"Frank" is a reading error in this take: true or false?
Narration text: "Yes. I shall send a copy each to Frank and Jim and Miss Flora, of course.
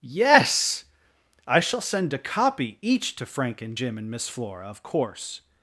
false